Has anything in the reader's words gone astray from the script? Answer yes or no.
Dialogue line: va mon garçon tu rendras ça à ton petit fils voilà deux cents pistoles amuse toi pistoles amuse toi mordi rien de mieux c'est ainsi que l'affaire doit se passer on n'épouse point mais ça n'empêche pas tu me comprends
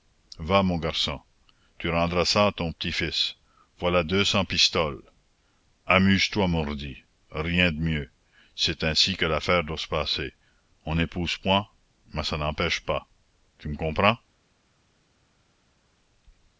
yes